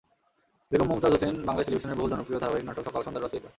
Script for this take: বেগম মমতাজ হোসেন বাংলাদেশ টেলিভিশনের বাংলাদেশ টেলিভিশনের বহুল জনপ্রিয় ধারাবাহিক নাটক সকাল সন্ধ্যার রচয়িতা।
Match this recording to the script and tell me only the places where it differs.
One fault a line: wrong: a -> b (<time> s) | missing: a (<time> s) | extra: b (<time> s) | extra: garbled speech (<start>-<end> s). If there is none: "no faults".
missing: বাংলাদেশ টেলিভিশনের (2.0 s)